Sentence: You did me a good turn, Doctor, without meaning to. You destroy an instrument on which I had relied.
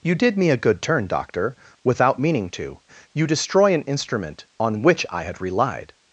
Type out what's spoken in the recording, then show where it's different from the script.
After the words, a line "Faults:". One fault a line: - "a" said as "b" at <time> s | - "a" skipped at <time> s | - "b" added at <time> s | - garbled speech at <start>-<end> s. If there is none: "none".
You did me a good turn, Doctor, without meaning to. You destroy an instrument on which I had relied.
Faults:
none